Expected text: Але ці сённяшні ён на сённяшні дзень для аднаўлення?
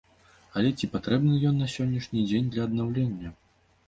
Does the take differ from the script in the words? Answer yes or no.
yes